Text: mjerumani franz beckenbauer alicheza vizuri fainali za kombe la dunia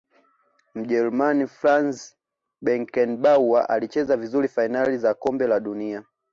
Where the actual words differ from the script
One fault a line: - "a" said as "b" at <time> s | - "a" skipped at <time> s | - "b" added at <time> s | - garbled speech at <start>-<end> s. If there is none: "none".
none